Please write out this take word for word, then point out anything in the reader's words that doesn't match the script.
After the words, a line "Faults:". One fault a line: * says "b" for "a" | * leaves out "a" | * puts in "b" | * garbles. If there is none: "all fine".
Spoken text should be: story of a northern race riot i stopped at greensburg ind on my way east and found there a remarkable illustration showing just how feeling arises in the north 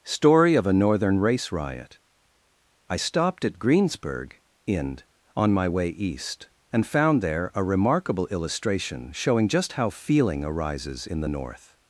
story of a northern race riot i stopped at greensburg ind on my way east and found there a remarkable illustration showing just how feeling arises in the north
Faults:
all fine